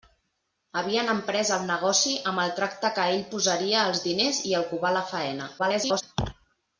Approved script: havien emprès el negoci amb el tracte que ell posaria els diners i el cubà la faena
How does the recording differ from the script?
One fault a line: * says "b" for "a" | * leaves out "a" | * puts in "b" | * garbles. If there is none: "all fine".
* garbles